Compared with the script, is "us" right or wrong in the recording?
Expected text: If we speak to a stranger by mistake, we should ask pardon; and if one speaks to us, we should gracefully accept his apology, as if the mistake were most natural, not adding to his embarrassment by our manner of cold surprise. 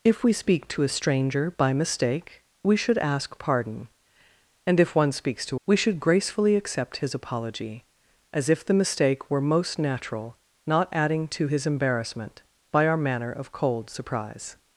wrong